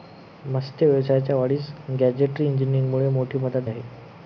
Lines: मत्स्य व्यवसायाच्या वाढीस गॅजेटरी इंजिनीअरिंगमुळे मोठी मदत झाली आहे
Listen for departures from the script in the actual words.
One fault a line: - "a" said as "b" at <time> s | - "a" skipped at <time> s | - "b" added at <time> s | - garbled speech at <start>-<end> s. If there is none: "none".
- "झाली" skipped at 3.7 s